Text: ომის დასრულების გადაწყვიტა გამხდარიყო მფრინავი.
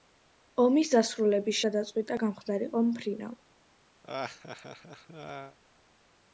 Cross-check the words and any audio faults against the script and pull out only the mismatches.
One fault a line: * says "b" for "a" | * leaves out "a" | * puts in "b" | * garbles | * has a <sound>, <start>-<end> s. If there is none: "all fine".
* has a laugh, 4.0-5.6 s